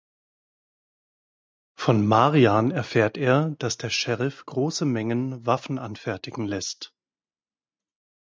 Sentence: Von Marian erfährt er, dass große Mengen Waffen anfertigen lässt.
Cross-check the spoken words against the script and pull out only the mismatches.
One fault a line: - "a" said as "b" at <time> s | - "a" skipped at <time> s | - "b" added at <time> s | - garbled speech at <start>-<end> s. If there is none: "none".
- "der Sheriff" added at 3.8 s